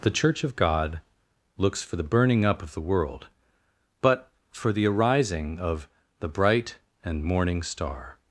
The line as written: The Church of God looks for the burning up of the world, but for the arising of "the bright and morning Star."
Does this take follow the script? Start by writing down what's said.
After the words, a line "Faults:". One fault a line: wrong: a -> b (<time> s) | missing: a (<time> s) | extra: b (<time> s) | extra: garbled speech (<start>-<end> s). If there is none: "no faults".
The Church of God looks for the burning up of the world, but for the arising of "the bright and morning Star."
Faults:
no faults